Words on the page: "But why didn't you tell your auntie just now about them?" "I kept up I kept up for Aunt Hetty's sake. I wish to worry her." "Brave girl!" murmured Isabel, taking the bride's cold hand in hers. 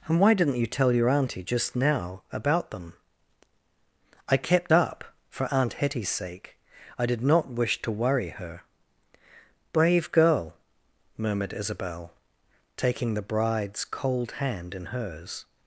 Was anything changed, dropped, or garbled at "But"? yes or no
yes